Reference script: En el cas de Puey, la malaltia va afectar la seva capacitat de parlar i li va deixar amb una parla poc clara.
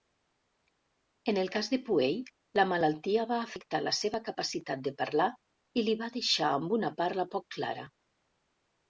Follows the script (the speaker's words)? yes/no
yes